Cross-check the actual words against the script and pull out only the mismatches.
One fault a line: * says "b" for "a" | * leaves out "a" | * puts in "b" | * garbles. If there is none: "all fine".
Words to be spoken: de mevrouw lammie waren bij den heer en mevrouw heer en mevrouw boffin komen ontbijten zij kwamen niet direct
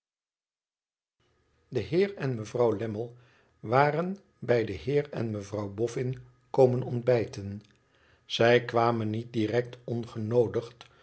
* puts in "heer en"
* leaves out "heer en mevrouw"